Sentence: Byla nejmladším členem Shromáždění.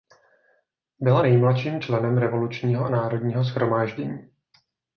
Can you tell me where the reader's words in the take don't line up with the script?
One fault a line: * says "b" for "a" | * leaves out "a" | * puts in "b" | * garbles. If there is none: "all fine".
* puts in "Revolučního národního"